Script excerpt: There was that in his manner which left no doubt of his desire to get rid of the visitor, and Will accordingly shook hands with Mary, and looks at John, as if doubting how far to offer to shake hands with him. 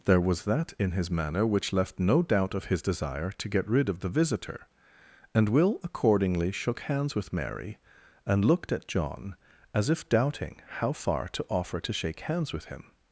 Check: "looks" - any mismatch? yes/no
yes